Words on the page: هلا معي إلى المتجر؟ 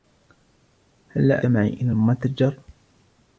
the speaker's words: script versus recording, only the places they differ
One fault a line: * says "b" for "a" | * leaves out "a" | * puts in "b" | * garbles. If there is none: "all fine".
all fine